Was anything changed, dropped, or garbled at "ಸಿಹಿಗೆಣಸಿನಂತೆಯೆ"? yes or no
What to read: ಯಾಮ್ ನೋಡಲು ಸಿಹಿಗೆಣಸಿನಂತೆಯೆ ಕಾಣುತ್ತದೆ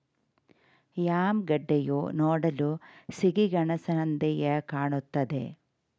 no